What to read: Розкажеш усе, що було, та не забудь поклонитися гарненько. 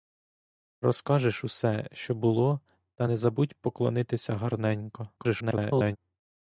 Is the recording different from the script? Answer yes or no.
yes